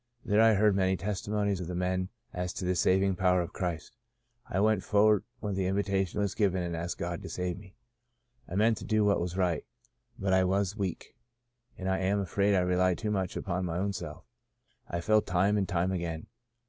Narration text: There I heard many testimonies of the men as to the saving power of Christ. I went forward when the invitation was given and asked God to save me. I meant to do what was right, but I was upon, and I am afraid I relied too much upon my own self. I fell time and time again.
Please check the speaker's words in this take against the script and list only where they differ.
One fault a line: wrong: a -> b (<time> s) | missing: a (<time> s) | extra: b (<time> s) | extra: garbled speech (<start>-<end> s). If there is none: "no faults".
wrong: upon -> weak (10.8 s)